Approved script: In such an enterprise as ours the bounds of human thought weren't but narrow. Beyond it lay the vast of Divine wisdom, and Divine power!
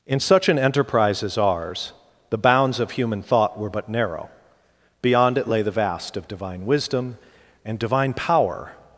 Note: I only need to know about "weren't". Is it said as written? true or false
false